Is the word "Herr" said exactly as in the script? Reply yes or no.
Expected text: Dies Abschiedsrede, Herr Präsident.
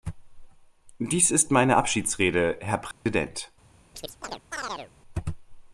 yes